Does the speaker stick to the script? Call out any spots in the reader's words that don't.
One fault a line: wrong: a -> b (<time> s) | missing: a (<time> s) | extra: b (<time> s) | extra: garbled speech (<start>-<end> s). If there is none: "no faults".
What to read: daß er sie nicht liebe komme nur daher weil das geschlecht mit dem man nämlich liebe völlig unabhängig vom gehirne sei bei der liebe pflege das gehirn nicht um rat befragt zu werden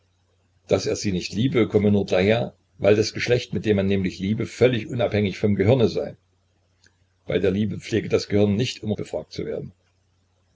missing: rat (8.9 s)